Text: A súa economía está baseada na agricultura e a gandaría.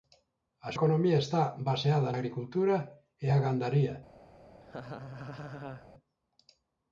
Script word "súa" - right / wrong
wrong